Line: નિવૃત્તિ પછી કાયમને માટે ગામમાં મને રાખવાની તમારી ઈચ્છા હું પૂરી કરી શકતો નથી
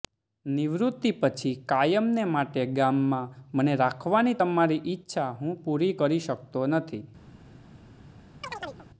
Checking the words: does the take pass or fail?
pass